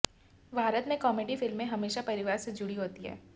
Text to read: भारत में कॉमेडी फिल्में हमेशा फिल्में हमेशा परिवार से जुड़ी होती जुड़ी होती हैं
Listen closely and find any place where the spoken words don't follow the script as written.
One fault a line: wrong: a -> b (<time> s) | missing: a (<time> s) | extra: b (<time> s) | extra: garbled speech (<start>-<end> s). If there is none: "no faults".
missing: फिल्में हमेशा (2.0 s)
missing: जुड़ी होती (3.0 s)